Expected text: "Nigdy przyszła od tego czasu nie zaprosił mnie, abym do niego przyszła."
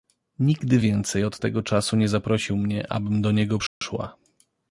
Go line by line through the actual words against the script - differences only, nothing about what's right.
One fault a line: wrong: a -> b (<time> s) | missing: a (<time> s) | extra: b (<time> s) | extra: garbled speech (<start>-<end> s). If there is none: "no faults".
wrong: przyszła -> więcej (0.8 s)